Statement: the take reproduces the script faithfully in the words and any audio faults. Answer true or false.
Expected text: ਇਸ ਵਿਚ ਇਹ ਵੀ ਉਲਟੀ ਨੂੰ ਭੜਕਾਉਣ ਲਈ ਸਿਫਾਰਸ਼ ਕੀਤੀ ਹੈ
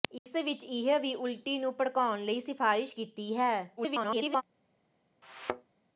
false